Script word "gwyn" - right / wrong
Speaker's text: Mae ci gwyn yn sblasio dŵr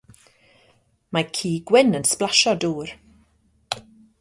right